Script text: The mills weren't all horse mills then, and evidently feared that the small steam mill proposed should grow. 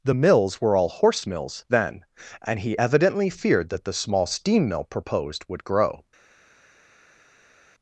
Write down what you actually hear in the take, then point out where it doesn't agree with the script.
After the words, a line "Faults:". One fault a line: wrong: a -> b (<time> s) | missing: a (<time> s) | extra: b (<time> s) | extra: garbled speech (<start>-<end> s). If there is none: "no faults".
The mills were all horse mills then, and he evidently feared that the small steam mill proposed would grow.
Faults:
wrong: weren't -> were (0.6 s)
extra: he (2.6 s)
wrong: should -> would (5.5 s)